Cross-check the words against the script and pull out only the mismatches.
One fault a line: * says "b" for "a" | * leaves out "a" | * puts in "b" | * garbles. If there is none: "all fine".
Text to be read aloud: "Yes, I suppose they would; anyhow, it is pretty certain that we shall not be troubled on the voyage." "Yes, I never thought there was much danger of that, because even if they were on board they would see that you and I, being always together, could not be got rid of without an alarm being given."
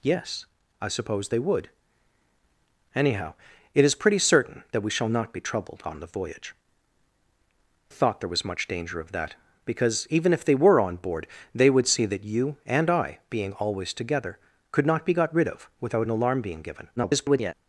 * leaves out "Yes I never"
* garbles